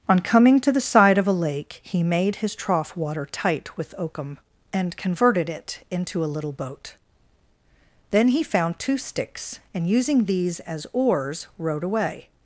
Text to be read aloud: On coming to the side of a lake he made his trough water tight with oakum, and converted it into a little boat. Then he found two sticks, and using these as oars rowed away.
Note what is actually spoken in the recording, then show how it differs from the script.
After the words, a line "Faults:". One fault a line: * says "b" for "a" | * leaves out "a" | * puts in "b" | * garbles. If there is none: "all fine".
On coming to the side of a lake he made his trough water tight with oakum, and converted it into a little boat. Then he found two sticks, and using these as oars rowed away.
Faults:
all fine